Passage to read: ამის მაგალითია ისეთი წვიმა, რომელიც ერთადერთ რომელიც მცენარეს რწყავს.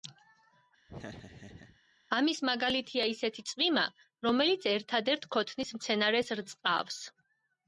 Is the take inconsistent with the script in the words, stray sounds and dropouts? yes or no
yes